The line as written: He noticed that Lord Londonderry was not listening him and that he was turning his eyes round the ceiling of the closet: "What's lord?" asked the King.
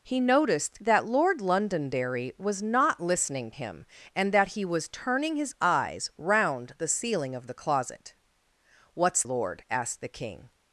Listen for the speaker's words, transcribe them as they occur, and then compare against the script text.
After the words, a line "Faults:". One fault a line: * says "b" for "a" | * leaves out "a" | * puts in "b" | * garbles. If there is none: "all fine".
He noticed that Lord Londonderry was not listening him and that he was turning his eyes round the ceiling of the closet: "What's lord?" asked the King.
Faults:
all fine